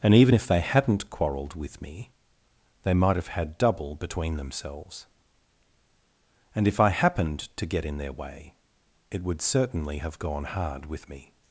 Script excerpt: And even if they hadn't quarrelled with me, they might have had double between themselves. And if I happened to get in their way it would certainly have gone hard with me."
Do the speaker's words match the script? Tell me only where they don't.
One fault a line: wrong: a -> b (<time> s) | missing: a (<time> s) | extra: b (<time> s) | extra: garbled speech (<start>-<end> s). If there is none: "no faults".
no faults